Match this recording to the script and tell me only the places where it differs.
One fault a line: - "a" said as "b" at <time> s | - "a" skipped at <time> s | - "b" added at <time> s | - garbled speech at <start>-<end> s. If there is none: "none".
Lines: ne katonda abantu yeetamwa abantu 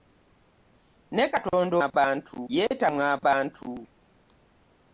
none